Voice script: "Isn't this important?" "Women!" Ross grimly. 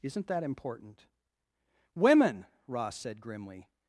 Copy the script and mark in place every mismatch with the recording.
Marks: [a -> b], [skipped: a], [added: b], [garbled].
"Isn't [this -> that] important?" "Women!" Ross [added: said] grimly.